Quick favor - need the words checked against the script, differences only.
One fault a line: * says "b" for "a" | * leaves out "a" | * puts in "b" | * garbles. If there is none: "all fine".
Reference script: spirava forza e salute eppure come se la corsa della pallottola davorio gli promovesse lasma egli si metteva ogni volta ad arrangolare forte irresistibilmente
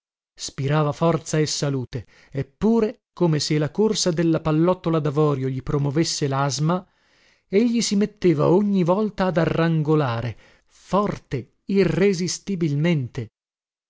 all fine